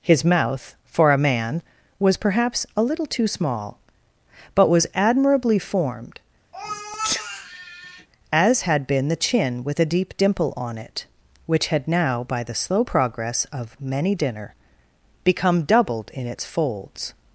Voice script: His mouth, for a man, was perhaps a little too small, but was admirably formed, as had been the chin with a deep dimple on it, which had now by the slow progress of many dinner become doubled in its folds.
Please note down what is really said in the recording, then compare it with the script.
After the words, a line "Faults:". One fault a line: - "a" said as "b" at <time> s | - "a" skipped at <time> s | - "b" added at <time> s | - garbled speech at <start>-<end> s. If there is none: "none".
His mouth, for a man, was perhaps a little too small, but was admirably formed, as had been the chin with a deep dimple on it, which had now by the slow progress of many dinner become doubled in its folds.
Faults:
none